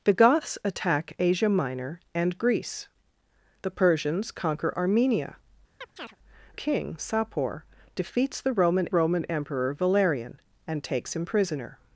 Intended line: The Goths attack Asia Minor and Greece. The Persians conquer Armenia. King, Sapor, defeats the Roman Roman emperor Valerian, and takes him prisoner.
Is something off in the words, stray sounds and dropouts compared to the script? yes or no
yes